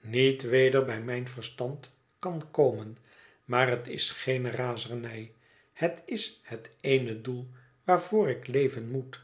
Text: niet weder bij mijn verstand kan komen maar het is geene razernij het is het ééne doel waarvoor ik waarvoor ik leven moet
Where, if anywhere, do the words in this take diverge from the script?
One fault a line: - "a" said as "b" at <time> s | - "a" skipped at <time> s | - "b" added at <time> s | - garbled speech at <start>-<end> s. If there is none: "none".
- "waarvoor ik" skipped at 8.5 s